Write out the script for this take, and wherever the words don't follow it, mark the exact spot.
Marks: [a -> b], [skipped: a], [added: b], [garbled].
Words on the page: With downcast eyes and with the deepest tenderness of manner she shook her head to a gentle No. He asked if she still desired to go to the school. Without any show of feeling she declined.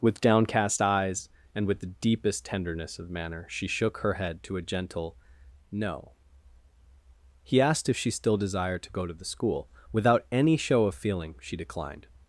With downcast eyes and with the deepest tenderness of manner she shook her head to a gentle No. He asked if she still desired to go to the school. Without any show of feeling she declined.